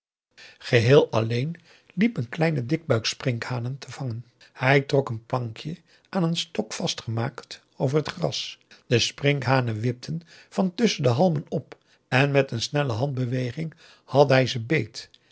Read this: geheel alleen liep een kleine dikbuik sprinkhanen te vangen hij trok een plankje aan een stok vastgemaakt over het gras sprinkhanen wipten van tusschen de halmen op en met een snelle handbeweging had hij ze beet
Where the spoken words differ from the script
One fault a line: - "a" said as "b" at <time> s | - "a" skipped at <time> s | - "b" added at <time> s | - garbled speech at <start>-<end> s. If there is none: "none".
- "de" added at 8.9 s